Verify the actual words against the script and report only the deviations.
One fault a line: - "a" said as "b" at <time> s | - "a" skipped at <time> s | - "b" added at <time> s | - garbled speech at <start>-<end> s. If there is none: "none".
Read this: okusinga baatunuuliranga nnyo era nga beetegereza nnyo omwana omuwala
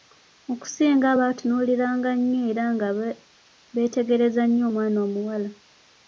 none